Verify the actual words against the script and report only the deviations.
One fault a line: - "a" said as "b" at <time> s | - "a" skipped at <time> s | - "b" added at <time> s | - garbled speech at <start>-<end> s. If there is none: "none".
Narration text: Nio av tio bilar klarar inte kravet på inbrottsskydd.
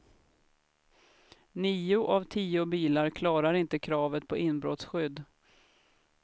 none